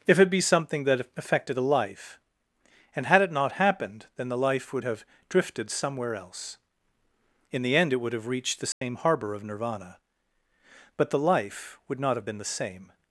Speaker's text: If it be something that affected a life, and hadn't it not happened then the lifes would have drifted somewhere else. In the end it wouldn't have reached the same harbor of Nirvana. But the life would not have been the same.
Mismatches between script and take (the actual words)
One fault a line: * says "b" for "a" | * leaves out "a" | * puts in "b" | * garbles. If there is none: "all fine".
* says "had" for "hadn't"
* says "life" for "lifes"
* says "would" for "wouldn't"